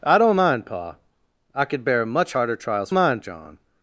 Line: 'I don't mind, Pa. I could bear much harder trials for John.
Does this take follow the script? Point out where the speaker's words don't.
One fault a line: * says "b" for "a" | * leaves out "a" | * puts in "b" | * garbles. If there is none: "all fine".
* says "mind" for "for"